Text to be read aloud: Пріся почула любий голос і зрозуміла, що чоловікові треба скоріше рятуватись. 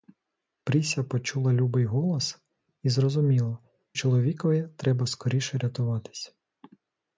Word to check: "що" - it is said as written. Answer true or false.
false